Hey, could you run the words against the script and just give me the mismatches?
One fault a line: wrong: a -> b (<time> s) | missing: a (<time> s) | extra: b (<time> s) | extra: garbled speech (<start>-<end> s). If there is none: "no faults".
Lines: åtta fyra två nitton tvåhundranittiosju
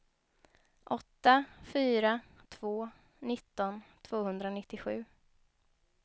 no faults